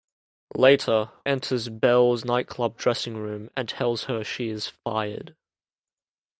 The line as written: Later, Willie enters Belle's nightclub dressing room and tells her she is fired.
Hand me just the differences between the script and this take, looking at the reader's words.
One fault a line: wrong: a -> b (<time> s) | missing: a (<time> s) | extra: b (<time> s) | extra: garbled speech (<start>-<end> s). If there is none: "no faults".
missing: Willie (1.1 s)